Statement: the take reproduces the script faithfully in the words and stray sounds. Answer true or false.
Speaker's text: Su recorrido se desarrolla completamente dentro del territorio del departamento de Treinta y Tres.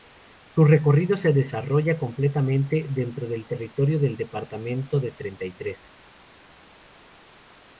true